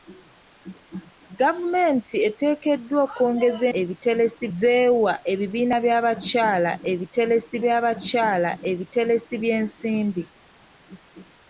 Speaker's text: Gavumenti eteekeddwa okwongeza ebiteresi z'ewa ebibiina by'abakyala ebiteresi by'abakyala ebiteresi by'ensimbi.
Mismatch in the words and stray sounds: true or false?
false